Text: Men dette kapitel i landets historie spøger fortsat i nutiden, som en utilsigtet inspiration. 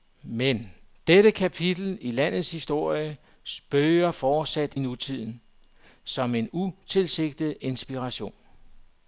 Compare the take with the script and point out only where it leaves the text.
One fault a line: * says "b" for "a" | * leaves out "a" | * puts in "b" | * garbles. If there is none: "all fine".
* leaves out "i"